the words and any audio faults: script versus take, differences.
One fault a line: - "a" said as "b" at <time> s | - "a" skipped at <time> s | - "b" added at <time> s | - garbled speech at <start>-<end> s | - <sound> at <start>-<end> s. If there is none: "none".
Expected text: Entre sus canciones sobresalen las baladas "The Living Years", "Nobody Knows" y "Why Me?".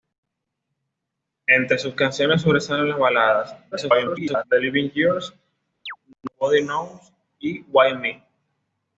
- garbled speech at 3.7-4.4 s
- chirp at 5.9-6.0 s